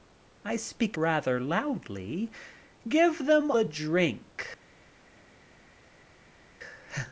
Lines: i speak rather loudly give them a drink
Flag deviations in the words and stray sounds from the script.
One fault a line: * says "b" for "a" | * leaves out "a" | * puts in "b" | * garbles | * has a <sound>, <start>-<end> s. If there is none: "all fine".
all fine